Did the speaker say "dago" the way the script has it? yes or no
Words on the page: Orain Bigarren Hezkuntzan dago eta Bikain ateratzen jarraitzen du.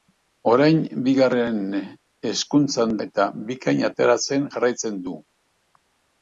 no